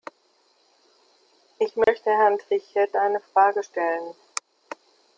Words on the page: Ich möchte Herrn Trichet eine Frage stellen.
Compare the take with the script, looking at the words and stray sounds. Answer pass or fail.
fail